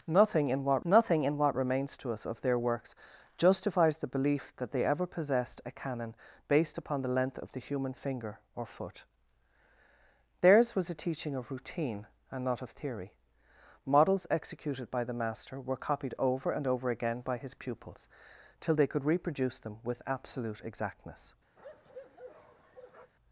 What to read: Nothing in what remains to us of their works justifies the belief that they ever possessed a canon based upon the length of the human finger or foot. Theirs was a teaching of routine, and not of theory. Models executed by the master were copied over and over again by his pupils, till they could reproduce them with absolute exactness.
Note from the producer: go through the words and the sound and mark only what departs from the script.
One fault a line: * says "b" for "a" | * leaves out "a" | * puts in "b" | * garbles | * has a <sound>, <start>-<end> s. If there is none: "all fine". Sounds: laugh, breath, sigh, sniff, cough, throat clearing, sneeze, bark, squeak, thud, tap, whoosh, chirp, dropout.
* puts in "nothing in what"
* has a bark, 21.6-23.1 s